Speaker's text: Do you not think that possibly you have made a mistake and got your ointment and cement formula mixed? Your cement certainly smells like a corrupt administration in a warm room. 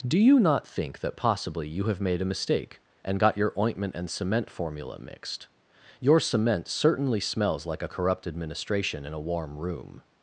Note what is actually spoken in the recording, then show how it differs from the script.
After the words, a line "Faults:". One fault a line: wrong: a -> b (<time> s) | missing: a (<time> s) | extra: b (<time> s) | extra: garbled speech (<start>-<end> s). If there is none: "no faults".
Do you not think that possibly you have made a mistake and got your ointment and cement formula mixed? Your cement certainly smells like a corrupt administration in a warm room.
Faults:
no faults